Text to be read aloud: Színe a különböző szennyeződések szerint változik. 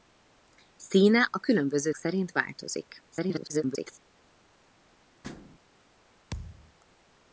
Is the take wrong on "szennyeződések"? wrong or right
wrong